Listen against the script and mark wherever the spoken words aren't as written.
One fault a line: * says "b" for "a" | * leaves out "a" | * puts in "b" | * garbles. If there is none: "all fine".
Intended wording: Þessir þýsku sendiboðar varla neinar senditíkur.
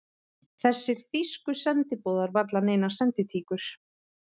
all fine